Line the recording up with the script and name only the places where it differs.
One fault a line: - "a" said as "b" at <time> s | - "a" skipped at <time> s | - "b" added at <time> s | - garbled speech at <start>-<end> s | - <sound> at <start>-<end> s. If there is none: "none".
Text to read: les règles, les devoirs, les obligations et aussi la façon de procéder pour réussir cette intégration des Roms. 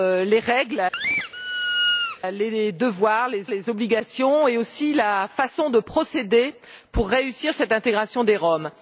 - squeak at 0.9-2.2 s
- "les" added at 3.5 s